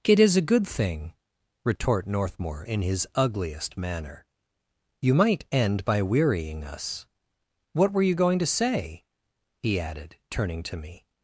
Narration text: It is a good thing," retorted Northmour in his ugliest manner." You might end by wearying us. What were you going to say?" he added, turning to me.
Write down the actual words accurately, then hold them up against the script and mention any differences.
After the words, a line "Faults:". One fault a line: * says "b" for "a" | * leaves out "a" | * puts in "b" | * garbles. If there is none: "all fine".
It is a good thing," retort Northmour in his ugliest manner." You might end by wearying us. What were you going to say?" he added, turning to me.
Faults:
* says "retort" for "retorted"